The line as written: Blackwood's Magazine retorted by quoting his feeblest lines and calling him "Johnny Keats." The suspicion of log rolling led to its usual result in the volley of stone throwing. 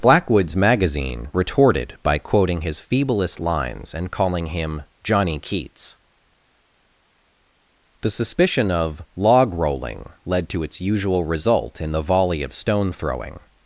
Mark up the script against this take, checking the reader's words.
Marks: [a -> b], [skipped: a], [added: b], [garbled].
Blackwood's Magazine retorted by quoting his feeblest lines and calling him "Johnny Keats." The suspicion of log rolling led to its usual result in the volley of stone throwing.